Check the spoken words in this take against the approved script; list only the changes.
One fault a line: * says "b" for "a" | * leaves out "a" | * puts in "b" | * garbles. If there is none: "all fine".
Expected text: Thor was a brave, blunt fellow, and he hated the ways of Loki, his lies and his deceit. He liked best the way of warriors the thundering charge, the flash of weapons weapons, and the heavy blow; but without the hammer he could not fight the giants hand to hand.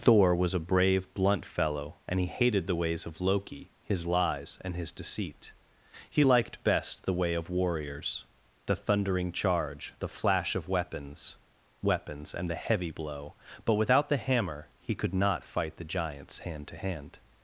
all fine